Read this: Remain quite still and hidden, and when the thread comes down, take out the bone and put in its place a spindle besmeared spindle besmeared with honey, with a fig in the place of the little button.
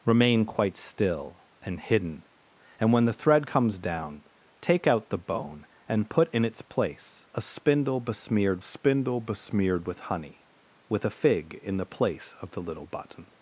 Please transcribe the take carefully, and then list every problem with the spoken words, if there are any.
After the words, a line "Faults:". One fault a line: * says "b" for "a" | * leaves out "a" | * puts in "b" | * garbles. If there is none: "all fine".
Remain quite still and hidden, and when the thread comes down, take out the bone and put in its place a spindle besmeared spindle besmeared with honey, with a fig in the place of the little button.
Faults:
all fine